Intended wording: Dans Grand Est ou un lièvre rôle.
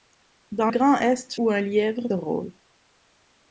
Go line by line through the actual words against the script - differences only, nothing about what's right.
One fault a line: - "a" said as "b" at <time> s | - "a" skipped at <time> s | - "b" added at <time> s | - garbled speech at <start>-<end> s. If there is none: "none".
none